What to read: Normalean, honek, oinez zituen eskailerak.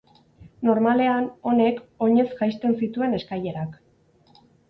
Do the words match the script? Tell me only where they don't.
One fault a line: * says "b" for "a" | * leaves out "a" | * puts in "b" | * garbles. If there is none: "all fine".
* puts in "jaisten"